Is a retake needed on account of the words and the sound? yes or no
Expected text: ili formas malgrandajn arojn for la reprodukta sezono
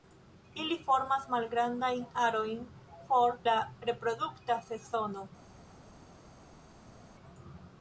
no